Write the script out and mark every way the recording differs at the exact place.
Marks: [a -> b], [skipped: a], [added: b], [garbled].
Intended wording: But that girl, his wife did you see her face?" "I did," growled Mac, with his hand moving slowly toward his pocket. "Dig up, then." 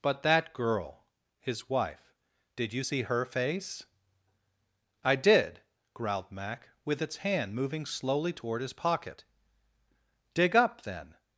But that girl, his wife did you see her face?" "I did," growled Mac, with [his -> its] hand moving slowly toward his pocket. "Dig up, then."